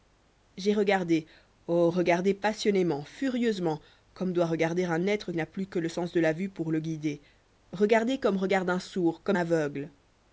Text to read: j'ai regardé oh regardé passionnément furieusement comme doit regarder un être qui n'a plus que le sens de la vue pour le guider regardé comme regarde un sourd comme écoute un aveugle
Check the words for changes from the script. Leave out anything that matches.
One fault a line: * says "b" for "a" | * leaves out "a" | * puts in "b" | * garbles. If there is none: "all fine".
* leaves out "qui"
* leaves out "écoute un"